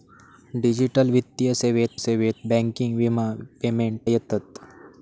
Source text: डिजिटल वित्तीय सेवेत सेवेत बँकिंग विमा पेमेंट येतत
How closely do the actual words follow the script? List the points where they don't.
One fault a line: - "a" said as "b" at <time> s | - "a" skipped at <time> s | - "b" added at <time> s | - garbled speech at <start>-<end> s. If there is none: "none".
none